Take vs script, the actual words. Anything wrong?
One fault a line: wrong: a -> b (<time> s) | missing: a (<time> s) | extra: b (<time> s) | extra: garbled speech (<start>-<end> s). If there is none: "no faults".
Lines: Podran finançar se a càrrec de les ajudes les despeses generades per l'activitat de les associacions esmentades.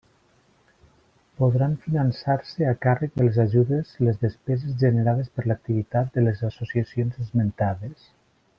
no faults